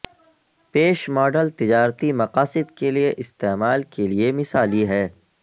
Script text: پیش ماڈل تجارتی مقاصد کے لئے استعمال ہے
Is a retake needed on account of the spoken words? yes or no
yes